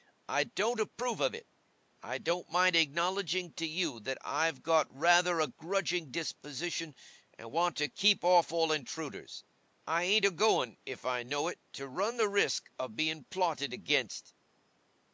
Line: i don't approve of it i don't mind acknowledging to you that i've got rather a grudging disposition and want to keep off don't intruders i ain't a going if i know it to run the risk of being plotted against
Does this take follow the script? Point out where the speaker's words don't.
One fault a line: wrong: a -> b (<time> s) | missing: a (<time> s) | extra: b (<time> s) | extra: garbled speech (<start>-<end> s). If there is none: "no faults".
wrong: don't -> all (8.5 s)